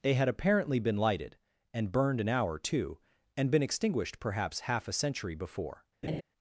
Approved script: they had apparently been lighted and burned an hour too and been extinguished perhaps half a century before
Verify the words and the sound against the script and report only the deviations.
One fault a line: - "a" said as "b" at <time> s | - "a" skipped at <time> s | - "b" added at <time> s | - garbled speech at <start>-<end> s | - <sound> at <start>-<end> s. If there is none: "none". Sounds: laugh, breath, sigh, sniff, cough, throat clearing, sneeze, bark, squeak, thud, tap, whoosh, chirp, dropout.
- laugh at 6.0-6.2 s